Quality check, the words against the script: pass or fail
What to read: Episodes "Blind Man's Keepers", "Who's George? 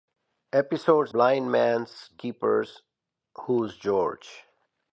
pass